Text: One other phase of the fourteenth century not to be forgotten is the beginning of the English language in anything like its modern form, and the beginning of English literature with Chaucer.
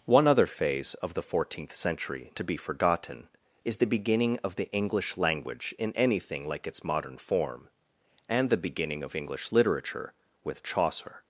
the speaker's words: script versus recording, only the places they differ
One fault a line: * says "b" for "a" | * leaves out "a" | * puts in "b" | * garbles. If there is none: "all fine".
* leaves out "not"